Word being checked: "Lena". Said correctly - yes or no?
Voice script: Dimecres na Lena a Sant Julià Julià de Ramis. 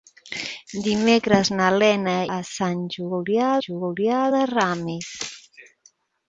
yes